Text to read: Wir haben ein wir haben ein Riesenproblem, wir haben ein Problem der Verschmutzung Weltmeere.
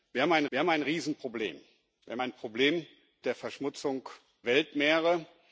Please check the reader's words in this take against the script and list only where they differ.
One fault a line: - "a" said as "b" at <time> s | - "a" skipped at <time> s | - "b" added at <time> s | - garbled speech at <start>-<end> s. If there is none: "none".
none